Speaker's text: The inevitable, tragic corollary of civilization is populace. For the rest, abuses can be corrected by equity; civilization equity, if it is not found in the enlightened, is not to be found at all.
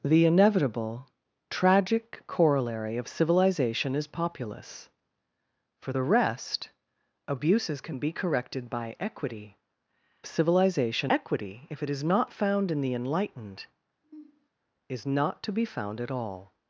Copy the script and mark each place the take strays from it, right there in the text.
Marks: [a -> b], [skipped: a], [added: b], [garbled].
The inevitable, tragic corollary of civilization is populace. For the rest, abuses can be corrected by equity; civilization equity, if it is not found in the enlightened, is not to be found at all.